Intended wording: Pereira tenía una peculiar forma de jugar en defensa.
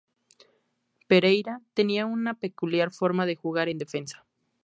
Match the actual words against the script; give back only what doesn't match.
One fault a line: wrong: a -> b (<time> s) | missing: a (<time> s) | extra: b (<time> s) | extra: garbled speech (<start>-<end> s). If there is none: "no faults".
no faults